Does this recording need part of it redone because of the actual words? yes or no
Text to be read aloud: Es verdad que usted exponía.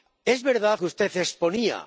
no